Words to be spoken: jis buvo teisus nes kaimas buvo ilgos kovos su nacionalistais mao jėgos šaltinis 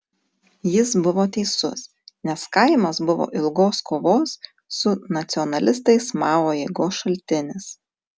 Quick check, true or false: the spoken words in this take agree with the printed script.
true